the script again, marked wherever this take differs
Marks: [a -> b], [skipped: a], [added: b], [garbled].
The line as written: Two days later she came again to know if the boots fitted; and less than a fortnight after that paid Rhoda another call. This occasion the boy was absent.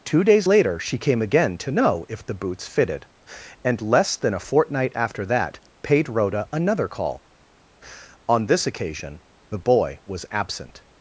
Two days later she came again to know if the boots fitted; and less than a fortnight after that paid Rhoda another call. [added: On] This occasion the boy was absent.